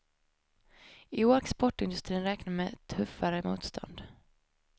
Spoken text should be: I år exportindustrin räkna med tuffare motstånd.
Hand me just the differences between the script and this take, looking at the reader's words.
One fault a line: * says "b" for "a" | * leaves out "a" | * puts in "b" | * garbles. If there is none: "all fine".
all fine